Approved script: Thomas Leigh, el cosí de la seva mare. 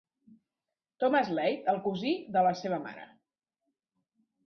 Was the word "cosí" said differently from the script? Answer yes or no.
no